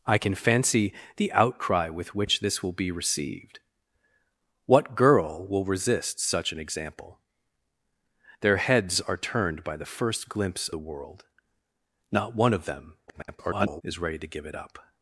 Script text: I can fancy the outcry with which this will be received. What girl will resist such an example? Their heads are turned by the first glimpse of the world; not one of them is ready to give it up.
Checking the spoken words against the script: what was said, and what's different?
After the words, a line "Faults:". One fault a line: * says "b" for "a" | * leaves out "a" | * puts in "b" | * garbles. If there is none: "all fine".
I can fancy the outcry with which this will be received. What girl will resist such an example? Their heads are turned by the first glimpse the world; not one of them [garbled] is ready to give it up.
Faults:
* leaves out "of"
* garbles